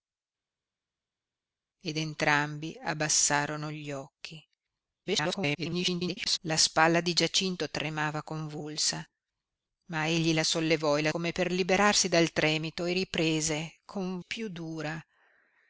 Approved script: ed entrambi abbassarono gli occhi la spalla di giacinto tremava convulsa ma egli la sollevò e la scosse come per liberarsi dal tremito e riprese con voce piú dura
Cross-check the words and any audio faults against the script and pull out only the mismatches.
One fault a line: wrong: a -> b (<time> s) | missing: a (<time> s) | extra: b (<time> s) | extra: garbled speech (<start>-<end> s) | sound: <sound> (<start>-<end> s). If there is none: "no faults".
extra: garbled speech (5.0-6.4 s)
missing: scosse (11.1 s)
missing: voce (14.2 s)